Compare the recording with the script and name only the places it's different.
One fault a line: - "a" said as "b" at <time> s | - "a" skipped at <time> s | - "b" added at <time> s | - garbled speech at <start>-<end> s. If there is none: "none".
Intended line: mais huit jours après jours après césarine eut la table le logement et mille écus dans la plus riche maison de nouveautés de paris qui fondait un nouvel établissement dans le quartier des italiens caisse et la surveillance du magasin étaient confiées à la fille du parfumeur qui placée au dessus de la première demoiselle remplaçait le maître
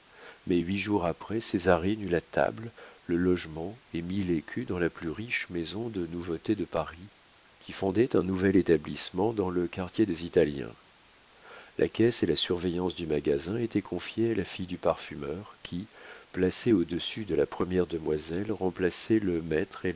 - "jours après" skipped at 1.4 s
- "la" added at 11.8 s